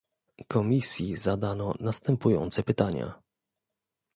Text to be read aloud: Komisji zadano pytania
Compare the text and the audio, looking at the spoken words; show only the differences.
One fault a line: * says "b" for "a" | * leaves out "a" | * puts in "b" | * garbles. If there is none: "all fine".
* puts in "następujące"